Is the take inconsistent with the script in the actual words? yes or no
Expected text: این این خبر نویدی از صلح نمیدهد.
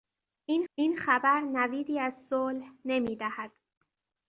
no